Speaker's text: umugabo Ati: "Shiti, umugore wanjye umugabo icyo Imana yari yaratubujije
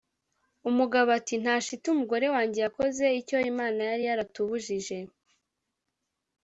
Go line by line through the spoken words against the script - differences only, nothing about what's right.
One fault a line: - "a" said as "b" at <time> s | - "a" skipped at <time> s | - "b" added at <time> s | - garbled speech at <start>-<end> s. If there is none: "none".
- "Nta" added at 1.4 s
- "umugabo" said as "yakoze" at 2.6 s